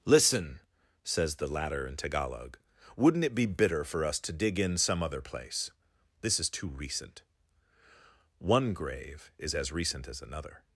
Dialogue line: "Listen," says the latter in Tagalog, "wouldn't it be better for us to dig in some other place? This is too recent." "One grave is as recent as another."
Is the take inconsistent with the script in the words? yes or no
yes